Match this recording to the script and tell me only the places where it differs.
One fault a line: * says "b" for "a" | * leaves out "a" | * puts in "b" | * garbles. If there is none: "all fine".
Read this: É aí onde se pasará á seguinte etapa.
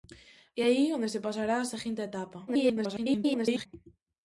* garbles